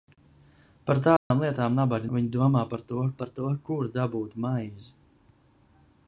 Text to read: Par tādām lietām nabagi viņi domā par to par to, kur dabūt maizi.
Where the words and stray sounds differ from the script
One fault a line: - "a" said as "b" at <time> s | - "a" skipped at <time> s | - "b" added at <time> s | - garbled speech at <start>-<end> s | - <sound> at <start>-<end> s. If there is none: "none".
- dropout at 1.2-1.3 s